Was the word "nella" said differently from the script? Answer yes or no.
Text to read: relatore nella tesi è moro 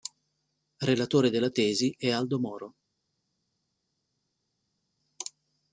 yes